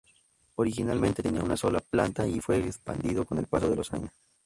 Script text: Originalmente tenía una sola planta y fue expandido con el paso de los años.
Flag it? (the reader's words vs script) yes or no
no